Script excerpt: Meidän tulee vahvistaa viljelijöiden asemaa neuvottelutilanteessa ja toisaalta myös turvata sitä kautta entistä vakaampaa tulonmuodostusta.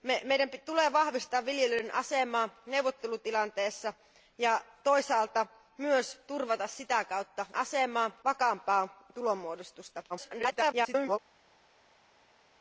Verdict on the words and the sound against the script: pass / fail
fail